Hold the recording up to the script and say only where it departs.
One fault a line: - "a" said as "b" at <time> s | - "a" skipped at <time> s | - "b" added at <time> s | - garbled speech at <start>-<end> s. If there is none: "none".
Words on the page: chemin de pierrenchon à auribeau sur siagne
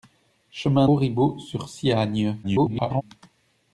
- "de pierrenchon à" skipped at 0.9 s
- garbled speech at 2.4-3.0 s